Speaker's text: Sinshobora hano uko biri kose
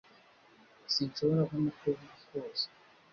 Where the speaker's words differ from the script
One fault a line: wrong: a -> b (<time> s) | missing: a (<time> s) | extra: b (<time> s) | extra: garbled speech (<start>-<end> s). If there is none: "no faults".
no faults